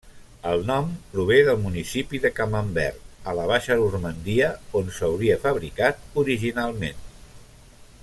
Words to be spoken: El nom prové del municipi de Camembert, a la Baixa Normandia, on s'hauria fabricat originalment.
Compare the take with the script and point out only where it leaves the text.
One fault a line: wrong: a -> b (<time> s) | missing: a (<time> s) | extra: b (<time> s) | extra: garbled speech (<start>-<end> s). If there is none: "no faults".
no faults